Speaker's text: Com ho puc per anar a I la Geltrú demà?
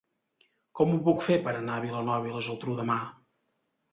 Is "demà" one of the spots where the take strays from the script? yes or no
no